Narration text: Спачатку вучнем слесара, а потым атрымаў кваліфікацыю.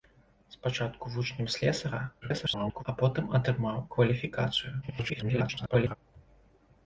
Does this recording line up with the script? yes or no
no